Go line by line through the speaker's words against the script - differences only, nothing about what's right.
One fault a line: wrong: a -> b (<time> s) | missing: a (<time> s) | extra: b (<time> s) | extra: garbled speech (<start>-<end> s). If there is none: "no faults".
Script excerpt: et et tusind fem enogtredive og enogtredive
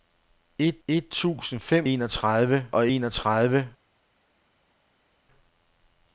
no faults